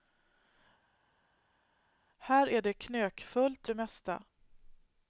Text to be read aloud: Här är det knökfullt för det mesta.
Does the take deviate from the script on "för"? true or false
true